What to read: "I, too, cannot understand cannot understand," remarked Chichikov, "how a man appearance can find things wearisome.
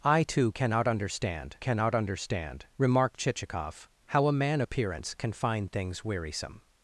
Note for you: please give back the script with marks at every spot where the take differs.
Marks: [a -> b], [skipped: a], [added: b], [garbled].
"I, too, cannot understand cannot understand," remarked Chichikov, "how a man appearance can find things wearisome.